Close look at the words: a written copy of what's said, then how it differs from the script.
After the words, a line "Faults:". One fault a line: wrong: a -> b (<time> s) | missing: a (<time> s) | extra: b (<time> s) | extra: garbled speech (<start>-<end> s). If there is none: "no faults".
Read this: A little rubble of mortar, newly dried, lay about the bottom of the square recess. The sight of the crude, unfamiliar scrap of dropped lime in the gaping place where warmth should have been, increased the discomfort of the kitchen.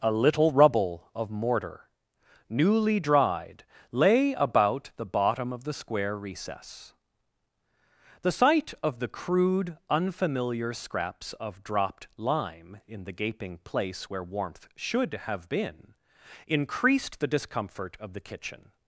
A little rubble of mortar, newly dried, lay about the bottom of the square recess. The sight of the crude, unfamiliar scraps of dropped lime in the gaping place where warmth should have been, increased the discomfort of the kitchen.
Faults:
wrong: scrap -> scraps (10.7 s)